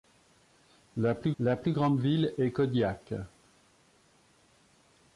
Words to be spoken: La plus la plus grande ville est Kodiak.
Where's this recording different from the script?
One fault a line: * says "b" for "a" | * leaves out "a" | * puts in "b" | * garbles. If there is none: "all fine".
all fine